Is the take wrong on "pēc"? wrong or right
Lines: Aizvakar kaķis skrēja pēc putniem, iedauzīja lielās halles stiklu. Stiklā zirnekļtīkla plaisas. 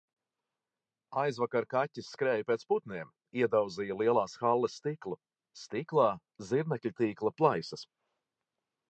right